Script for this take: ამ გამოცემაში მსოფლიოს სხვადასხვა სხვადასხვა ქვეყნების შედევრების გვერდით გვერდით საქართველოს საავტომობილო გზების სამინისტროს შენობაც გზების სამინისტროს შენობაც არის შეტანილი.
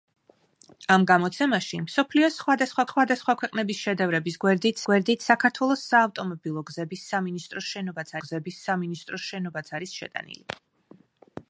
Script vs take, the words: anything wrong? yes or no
no